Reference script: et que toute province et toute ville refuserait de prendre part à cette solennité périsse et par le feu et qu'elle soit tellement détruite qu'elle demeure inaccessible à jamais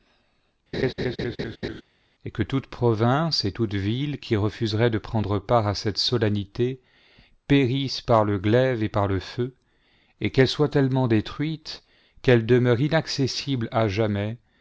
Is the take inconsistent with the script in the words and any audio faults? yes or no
yes